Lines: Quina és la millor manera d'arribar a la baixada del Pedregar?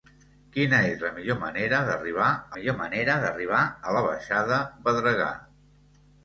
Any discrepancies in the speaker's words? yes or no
yes